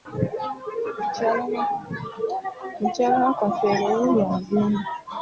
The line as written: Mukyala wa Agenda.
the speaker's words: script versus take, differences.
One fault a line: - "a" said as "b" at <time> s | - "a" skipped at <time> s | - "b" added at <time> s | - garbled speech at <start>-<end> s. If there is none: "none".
- "Kafeero wuuyo" added at 3.4 s